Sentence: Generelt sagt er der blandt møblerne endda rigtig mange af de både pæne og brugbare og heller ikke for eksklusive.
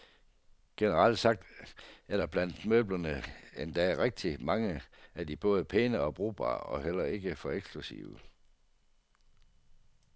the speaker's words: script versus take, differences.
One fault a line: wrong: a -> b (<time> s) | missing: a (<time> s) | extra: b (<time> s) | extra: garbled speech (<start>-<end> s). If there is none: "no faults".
no faults